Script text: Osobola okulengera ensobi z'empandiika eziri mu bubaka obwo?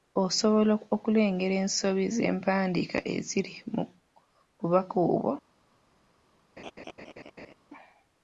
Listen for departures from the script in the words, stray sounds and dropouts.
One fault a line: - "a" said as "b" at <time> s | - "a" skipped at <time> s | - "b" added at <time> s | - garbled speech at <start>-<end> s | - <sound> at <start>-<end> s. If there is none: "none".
- laugh at 6.6-7.5 s